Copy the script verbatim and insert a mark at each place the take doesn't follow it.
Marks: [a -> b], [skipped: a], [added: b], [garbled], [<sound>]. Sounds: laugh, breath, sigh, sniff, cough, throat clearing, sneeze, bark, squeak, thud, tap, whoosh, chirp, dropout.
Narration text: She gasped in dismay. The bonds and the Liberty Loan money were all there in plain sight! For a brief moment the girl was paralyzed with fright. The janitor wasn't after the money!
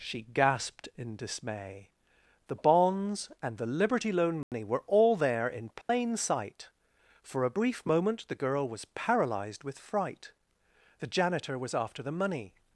She gasped in dismay. The bonds and the Liberty Loan money [dropout] were all there in plain [dropout] sight! For a brief moment the girl was paralyzed with fright. The janitor [wasn't -> was] after the money!